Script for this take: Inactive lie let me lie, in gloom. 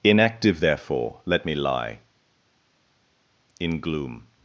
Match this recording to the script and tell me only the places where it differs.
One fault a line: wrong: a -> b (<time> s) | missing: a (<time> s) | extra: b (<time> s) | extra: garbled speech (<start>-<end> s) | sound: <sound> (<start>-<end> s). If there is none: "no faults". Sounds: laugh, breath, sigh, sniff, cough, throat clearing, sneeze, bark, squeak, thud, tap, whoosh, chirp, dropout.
wrong: lie -> therefore (0.6 s)